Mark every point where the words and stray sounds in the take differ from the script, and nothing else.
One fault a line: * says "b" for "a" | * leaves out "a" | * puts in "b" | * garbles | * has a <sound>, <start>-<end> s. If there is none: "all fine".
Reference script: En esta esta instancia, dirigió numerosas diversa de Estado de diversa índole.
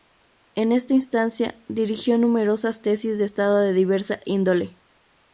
* leaves out "esta"
* says "tesis" for "diversa"